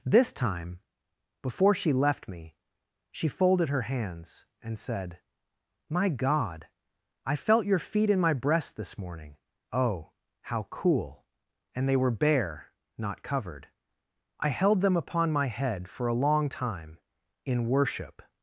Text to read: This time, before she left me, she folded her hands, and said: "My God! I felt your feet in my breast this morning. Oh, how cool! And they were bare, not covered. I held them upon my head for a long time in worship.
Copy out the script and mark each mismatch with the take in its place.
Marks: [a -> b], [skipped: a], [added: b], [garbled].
This time, before she left me, she folded her hands, and said: "My God! I felt your feet in my breast this morning. Oh, how cool! And they were bare, not covered. I held them upon my head for a long time in worship.